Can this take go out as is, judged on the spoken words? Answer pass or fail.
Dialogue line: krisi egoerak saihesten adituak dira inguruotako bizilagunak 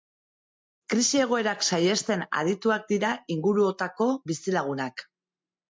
pass